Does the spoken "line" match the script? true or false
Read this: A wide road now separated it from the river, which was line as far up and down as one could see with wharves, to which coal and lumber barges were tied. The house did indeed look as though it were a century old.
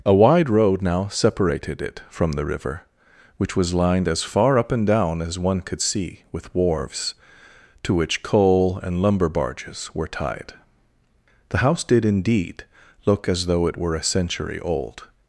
false